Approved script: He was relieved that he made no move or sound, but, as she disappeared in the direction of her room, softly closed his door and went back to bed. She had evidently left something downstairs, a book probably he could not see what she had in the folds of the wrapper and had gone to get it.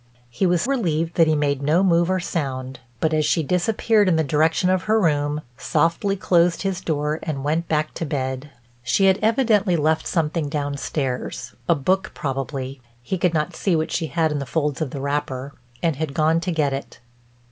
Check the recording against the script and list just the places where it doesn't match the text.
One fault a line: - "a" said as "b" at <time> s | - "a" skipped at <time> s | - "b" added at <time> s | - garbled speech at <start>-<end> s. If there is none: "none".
none